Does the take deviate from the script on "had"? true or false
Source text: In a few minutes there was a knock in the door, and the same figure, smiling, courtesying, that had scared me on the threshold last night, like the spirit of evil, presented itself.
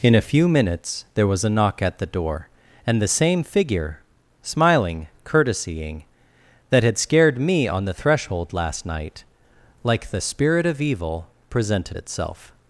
false